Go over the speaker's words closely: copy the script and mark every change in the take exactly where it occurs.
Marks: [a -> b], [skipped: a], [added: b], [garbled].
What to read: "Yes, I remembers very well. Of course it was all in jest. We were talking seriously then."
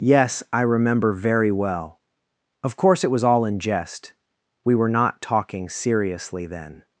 "Yes, I [remembers -> remember] very well. Of course it was all in jest. We were [added: not] talking seriously then."